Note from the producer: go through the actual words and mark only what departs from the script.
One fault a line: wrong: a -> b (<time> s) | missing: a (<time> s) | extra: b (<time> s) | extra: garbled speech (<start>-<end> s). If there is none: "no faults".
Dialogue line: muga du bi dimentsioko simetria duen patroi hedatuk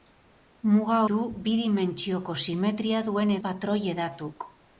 no faults